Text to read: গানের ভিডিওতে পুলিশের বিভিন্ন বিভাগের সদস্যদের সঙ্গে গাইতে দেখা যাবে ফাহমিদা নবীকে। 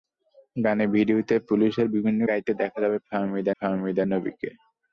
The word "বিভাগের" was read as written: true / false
false